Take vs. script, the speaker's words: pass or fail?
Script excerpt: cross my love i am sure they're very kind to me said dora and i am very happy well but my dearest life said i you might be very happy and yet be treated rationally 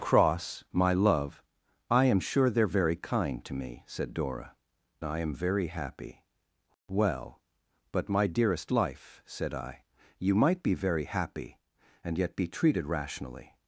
fail